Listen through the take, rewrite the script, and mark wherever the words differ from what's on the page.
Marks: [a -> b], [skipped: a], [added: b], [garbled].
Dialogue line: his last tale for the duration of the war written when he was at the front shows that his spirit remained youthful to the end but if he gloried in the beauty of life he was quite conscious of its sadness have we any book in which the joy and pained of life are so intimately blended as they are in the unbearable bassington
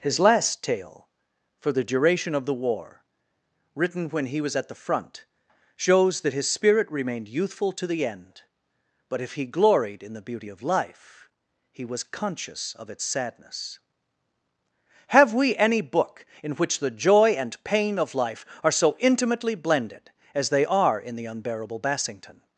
his last tale for the duration of the war written when he was at the front shows that his spirit remained youthful to the end but if he gloried in the beauty of life he was [skipped: quite] conscious of its sadness have we any book in which the joy and [pained -> pain] of life are so intimately blended as they are in the unbearable bassington